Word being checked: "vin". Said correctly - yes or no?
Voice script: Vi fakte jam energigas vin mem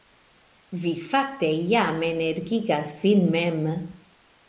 yes